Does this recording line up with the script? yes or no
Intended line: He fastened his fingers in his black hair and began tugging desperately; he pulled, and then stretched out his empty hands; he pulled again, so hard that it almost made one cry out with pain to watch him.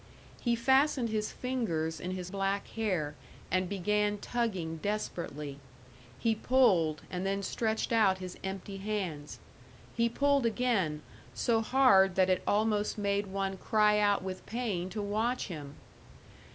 yes